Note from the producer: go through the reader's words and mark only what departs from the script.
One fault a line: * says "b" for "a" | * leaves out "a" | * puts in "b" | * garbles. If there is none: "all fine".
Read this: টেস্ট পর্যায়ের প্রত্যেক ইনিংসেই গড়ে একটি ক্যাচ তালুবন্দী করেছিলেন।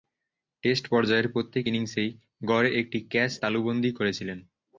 all fine